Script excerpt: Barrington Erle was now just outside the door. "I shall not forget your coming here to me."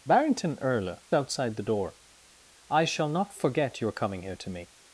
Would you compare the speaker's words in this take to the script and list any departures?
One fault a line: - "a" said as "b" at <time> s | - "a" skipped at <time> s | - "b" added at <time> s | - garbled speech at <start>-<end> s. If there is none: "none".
- "was now just" skipped at 1.0 s